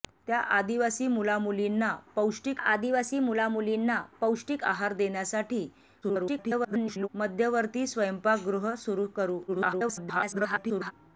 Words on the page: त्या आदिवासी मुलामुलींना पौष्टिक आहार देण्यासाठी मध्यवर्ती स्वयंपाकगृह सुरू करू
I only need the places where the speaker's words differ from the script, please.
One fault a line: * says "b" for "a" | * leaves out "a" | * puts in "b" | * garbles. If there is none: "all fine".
* puts in "आदिवासी मुलामुलींना पौष्टिक"
* garbles
* garbles